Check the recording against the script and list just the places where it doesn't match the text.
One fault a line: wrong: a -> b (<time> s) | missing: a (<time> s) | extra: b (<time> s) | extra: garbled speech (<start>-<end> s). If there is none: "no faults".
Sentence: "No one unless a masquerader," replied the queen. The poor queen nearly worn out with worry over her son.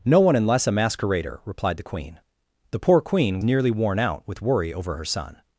no faults